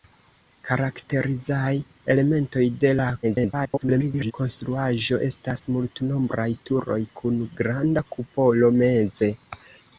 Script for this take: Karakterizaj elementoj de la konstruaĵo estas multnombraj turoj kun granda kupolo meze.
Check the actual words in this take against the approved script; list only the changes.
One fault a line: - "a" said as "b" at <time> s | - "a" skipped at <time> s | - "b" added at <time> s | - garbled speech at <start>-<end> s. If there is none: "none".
- garbled speech at 3.2-4.3 s